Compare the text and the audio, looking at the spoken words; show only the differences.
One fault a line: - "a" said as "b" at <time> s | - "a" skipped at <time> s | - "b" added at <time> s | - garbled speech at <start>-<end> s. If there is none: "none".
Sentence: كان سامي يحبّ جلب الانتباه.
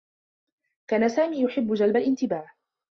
none